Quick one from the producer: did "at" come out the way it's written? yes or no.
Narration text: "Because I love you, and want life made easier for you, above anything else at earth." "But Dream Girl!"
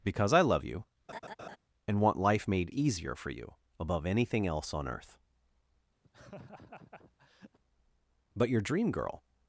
no